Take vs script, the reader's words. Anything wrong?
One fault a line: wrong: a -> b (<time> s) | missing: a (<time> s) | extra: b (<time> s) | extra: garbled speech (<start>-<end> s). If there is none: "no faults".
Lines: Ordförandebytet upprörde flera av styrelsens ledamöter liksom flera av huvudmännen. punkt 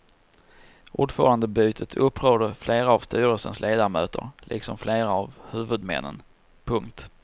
no faults